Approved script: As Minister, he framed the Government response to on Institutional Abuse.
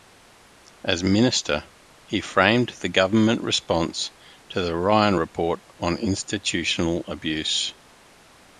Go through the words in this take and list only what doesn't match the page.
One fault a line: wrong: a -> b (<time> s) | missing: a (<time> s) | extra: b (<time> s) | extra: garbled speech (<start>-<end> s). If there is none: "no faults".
extra: the Ryan Report (4.6 s)